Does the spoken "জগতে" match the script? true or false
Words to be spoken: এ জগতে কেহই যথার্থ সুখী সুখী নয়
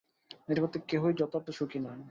true